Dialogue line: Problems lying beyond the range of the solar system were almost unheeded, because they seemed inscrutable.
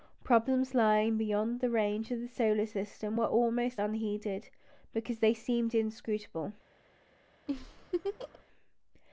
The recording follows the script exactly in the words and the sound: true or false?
false